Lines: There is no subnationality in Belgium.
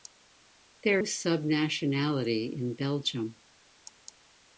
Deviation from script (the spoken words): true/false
true